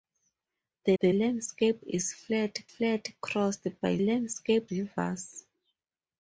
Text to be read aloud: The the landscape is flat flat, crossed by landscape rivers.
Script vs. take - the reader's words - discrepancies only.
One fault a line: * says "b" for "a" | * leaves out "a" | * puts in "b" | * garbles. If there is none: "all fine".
all fine